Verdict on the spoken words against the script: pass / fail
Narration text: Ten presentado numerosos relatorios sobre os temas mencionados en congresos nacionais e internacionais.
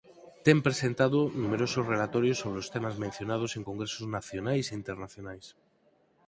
pass